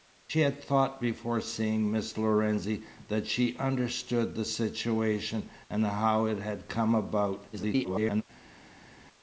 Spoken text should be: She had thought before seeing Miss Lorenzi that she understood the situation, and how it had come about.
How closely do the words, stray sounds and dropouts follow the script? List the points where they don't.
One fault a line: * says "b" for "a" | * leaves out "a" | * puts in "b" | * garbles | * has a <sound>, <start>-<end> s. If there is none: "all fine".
* garbles